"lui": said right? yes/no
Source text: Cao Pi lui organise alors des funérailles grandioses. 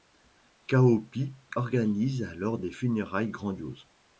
no